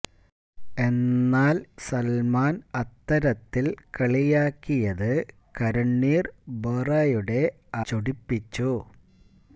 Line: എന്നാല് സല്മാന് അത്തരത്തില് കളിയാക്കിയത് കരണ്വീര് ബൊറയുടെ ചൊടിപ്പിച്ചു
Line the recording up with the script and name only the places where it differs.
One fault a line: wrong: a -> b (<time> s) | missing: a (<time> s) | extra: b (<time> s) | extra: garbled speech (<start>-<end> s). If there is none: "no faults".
no faults